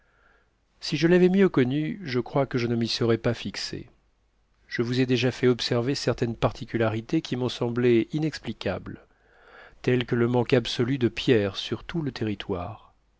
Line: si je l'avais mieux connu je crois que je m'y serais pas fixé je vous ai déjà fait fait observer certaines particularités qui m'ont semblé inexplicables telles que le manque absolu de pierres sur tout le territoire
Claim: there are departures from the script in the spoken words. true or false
true